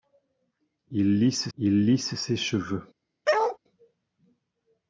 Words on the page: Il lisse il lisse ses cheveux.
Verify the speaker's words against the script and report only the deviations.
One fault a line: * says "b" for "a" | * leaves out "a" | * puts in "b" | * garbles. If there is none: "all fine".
all fine